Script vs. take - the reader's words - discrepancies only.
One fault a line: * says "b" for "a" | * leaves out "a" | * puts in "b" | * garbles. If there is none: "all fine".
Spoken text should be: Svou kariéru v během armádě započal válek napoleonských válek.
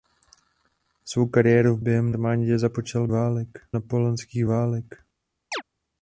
all fine